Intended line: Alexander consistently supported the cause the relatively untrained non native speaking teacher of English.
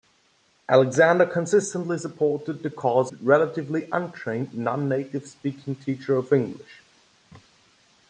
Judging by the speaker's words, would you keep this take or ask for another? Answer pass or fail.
pass